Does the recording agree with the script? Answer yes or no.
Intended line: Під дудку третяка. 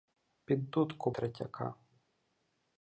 yes